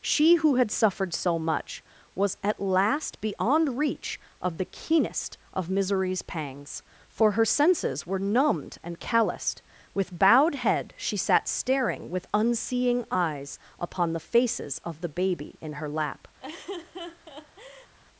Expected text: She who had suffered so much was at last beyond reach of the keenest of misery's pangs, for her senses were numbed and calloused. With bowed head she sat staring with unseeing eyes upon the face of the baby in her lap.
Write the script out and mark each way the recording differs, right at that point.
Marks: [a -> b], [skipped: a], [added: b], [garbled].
She who had suffered so much was at last beyond reach of the keenest of misery's pangs, for her senses were numbed and calloused. With bowed head she sat staring with unseeing eyes upon the [face -> faces] of the baby in her lap.